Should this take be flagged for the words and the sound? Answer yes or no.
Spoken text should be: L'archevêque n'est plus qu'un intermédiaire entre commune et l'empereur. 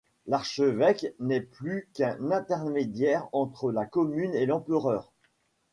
yes